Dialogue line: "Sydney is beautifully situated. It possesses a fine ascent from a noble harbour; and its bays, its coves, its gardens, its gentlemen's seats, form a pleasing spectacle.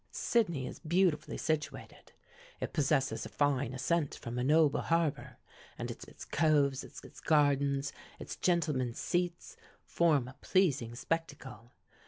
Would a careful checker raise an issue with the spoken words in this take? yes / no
yes